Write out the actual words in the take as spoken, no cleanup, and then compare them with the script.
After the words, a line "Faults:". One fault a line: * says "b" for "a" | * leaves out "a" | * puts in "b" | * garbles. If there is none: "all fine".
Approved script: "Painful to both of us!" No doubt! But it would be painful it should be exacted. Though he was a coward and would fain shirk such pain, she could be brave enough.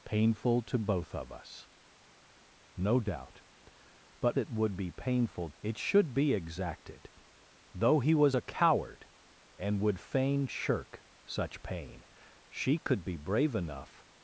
"Painful to both of us!" No doubt! But it would be painful it should be exacted. Though he was a coward and would fain shirk such pain, she could be brave enough.
Faults:
all fine